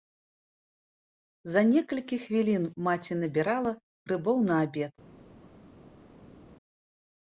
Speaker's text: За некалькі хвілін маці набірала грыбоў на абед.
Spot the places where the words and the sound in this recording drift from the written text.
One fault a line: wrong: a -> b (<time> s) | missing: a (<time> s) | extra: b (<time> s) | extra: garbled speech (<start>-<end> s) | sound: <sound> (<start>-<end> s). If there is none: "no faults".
no faults